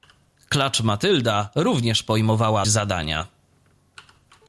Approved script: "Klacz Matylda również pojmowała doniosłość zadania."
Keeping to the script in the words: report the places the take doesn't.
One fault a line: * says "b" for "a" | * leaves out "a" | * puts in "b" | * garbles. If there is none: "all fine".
* leaves out "doniosłość"